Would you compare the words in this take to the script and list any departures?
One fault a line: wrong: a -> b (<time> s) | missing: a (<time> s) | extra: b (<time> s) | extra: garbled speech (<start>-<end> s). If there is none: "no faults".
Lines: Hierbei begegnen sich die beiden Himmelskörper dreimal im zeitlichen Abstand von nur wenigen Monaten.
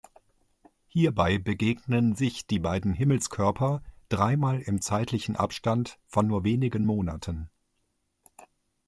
no faults